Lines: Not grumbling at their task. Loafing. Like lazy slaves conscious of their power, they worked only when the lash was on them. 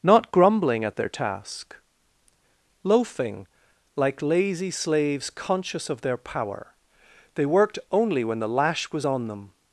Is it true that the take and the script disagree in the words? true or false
false